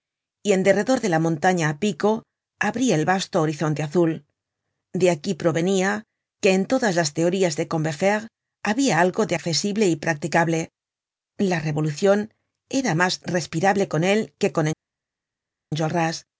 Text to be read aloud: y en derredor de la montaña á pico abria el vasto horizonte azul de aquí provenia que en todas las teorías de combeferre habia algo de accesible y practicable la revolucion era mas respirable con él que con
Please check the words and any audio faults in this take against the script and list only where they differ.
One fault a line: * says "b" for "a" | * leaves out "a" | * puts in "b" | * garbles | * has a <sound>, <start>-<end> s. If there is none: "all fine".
all fine